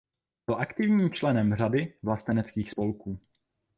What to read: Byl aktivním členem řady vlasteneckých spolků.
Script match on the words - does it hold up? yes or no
yes